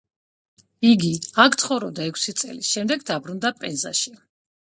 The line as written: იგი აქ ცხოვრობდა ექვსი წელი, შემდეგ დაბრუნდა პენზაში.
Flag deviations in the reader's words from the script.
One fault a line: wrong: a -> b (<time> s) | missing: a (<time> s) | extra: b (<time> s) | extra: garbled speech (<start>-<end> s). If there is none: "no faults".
no faults